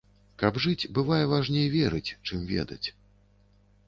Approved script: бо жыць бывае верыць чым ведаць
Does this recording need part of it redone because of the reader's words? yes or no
yes